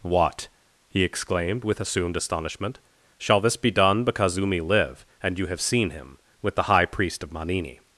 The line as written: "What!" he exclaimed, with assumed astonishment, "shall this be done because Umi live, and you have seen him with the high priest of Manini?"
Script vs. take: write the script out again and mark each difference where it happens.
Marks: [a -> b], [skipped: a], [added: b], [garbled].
"What!" he exclaimed, with assumed astonishment, "shall this be done because Umi live, and you have seen him with the high priest of Manini?"